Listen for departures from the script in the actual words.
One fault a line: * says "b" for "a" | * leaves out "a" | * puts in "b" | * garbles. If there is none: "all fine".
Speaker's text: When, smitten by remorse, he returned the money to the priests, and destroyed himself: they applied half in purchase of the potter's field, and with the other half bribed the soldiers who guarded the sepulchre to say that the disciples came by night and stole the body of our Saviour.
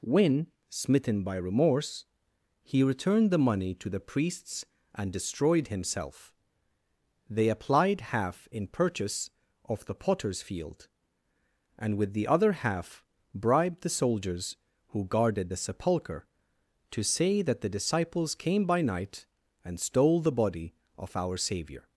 all fine